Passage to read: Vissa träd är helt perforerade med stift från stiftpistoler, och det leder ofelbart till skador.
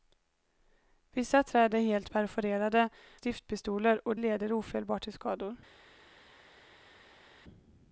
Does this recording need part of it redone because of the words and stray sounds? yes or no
yes